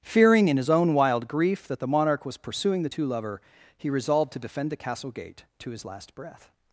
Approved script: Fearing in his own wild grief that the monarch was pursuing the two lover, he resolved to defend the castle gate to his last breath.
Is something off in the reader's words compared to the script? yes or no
no